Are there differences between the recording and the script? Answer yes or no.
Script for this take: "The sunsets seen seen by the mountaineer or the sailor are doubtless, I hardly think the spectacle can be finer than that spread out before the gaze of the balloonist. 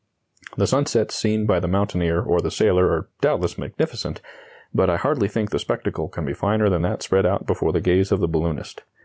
yes